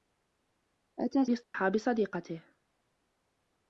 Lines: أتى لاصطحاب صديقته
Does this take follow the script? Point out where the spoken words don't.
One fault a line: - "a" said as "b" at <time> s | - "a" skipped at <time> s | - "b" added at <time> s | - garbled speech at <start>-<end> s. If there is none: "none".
none